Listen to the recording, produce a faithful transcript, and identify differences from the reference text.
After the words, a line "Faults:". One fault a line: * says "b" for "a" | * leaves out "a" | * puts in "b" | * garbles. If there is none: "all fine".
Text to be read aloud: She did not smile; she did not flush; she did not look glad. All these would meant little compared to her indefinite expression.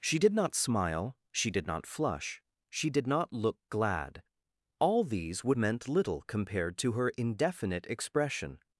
She did not smile; she did not flush; she did not look glad. All these would meant little compared to her indefinite expression.
Faults:
all fine